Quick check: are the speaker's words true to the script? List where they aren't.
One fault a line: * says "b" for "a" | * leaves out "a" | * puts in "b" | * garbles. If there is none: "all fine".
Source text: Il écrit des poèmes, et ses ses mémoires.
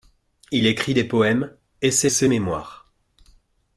all fine